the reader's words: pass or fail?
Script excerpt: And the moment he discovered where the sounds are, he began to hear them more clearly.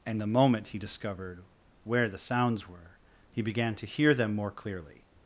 fail